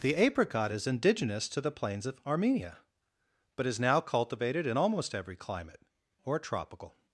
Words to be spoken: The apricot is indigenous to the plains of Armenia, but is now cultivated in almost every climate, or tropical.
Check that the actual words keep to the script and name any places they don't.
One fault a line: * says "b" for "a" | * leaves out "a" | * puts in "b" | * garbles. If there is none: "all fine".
all fine